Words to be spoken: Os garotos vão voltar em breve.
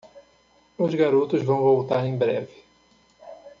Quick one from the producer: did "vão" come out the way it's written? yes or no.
yes